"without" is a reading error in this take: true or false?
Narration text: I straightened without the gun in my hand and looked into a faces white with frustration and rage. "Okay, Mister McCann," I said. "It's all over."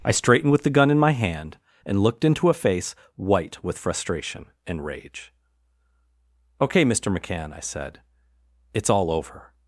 true